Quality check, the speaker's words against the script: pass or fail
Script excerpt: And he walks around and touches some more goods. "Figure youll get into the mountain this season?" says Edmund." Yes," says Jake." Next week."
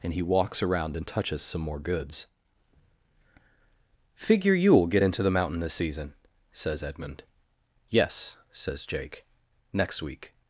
pass